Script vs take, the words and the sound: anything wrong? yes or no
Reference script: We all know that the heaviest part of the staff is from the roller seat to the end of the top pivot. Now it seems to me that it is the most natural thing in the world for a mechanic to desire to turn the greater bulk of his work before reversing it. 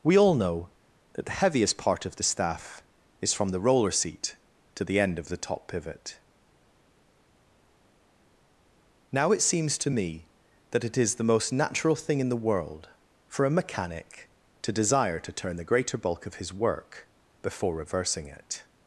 no